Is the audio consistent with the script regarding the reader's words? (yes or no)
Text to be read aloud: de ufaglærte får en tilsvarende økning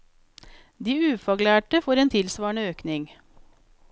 yes